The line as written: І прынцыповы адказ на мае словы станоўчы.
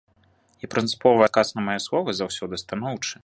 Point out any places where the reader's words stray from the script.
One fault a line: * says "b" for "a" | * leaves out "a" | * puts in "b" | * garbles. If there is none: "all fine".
* puts in "заўсёды"